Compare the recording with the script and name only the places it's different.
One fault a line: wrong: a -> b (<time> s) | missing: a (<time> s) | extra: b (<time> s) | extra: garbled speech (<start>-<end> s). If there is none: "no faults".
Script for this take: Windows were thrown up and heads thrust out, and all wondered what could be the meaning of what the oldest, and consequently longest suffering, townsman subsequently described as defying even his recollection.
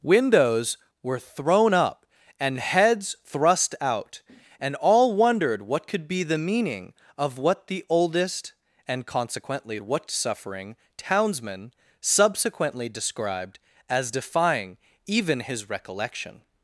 wrong: longest -> what (9.8 s)